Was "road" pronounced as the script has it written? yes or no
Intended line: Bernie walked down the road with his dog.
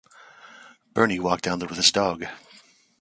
no